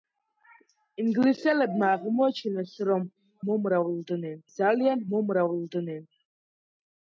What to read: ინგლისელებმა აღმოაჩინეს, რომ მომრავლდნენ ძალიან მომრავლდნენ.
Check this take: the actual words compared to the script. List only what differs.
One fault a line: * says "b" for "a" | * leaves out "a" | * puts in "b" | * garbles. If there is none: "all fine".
all fine